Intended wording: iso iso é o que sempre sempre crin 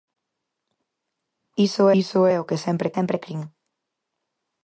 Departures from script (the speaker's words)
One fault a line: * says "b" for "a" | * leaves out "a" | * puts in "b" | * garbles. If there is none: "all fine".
all fine